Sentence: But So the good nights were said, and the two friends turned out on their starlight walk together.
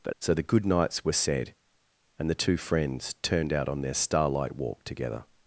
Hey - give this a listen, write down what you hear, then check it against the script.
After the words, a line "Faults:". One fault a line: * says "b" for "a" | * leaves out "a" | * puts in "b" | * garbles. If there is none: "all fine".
But So the good nights were said, and the two friends turned out on their starlight walk together.
Faults:
all fine